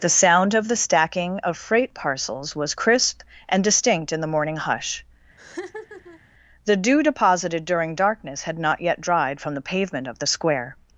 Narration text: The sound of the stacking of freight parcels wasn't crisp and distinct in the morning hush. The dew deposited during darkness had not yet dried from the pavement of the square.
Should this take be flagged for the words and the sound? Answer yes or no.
yes